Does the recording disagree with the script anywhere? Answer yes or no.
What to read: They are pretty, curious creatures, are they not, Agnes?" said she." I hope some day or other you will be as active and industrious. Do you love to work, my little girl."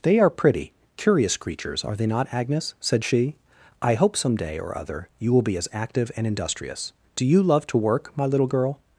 no